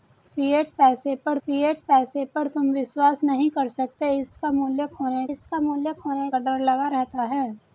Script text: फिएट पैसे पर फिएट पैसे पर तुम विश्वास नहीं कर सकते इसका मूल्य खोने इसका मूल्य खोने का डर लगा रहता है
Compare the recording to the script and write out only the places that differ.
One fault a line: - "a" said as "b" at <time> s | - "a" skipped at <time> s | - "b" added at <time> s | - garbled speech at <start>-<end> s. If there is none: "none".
none